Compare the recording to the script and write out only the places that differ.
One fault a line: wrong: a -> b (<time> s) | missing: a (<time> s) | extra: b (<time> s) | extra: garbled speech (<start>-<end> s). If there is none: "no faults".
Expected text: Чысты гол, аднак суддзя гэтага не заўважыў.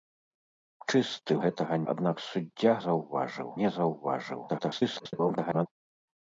wrong: гол -> гэтага (1.4 s)
wrong: гэтага -> заўважыў (2.9 s)
extra: garbled speech (4.5-5.7 s)